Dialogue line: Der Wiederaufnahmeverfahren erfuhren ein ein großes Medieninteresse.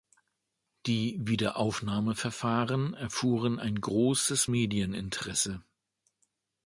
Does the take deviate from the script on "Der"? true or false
true